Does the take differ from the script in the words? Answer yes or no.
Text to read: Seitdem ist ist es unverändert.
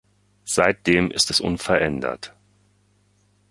yes